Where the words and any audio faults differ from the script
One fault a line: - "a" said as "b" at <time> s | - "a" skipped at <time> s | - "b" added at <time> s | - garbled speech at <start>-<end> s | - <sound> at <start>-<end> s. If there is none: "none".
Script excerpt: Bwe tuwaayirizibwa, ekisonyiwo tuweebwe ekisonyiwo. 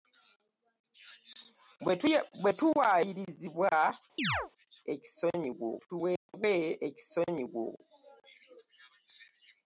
- chirp at 4.2-4.5 s
- dropout at 6.2-6.3 s